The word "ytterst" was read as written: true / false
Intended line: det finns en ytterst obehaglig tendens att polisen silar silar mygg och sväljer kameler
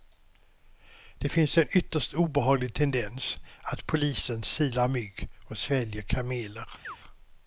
true